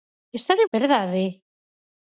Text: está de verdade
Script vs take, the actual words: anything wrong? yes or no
no